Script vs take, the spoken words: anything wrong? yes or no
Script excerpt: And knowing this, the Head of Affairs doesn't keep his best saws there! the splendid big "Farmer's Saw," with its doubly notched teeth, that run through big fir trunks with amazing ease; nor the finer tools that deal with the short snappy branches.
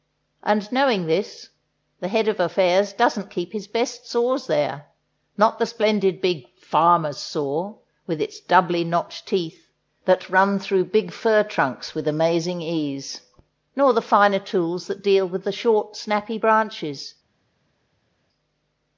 yes